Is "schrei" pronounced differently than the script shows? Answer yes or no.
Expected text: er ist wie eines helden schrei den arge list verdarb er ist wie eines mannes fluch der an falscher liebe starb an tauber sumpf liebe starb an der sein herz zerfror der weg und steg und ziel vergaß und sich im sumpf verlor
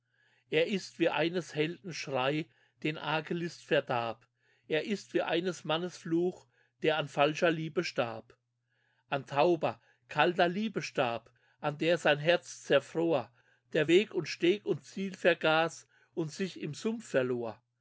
no